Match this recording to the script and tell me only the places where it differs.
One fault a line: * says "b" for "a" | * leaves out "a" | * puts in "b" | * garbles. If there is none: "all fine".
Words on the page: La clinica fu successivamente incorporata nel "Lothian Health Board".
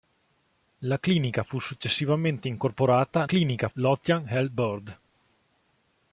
* says "clinica" for "nel"